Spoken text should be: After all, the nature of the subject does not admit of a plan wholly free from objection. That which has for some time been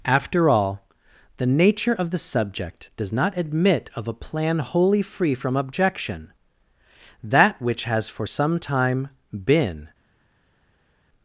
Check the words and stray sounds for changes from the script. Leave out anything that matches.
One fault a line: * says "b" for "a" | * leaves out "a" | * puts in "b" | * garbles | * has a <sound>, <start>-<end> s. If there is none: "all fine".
all fine